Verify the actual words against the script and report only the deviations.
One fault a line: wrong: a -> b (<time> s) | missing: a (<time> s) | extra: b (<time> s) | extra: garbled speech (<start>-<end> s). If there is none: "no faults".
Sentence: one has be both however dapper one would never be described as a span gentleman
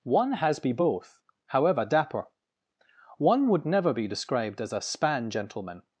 no faults